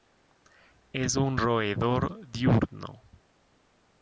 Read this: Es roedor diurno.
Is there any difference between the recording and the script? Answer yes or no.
yes